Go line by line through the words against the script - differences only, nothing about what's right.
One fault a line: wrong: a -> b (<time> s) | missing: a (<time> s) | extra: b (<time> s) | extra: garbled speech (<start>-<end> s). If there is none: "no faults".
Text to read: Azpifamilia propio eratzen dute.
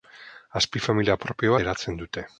no faults